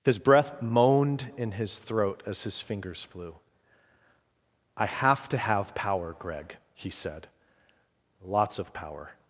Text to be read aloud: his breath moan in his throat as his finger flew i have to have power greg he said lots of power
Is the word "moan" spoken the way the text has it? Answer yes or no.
no